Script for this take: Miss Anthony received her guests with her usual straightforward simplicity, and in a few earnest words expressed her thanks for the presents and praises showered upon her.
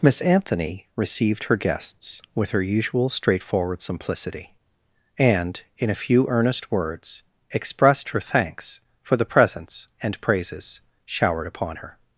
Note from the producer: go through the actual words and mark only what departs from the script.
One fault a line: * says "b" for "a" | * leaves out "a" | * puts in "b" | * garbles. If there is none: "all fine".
all fine